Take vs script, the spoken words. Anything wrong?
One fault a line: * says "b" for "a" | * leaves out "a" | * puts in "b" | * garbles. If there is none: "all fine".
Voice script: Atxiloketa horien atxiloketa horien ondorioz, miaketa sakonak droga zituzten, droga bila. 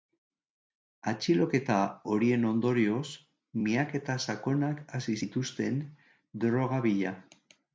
* leaves out "atxiloketa horien"
* says "hasi" for "droga"